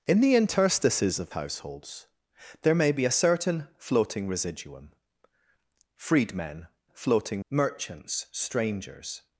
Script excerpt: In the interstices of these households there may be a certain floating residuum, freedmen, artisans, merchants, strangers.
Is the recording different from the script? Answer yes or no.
yes